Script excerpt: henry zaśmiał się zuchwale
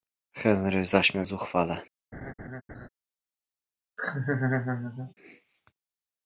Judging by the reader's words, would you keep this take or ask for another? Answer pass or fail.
fail